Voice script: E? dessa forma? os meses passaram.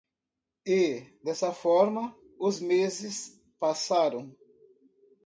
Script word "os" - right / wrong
right